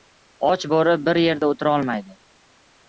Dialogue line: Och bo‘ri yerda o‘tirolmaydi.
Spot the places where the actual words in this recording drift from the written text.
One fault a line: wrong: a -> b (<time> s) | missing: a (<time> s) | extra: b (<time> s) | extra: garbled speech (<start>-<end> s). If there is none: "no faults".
extra: bir (1.1 s)